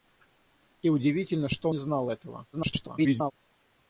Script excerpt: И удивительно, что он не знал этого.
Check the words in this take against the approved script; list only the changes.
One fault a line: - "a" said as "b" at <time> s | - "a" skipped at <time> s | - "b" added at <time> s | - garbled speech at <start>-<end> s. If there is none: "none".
- "он" skipped at 1.7 s
- garbled speech at 2.5-3.3 s